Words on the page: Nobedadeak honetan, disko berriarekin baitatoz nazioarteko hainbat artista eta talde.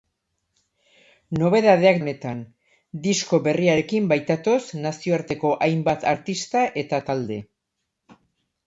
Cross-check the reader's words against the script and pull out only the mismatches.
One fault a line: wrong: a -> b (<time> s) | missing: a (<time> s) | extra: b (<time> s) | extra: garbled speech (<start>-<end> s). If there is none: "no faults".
no faults